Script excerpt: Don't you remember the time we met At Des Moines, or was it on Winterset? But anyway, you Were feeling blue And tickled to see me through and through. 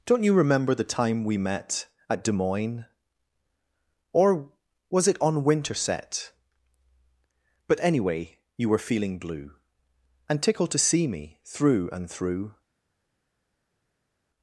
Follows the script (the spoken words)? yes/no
yes